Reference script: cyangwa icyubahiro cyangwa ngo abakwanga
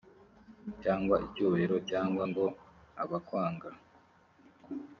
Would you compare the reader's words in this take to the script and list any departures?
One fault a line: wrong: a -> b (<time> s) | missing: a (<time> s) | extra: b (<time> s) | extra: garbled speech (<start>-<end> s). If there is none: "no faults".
no faults